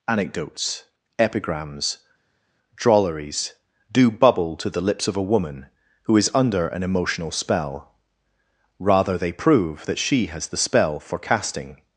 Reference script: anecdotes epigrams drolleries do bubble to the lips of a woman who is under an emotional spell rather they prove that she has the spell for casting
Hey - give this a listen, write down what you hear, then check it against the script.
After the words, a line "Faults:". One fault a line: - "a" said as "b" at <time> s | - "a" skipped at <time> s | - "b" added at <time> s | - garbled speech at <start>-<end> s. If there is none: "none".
anecdotes epigrams drolleries do bubble to the lips of a woman who is under an emotional spell rather they prove that she has the spell for casting
Faults:
none